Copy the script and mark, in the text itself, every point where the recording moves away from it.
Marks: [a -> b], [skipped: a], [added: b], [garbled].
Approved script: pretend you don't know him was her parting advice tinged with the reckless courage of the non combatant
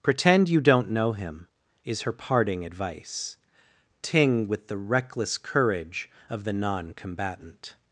pretend you don't know him [was -> is] her parting advice [tinged -> ting] with the reckless courage of the non combatant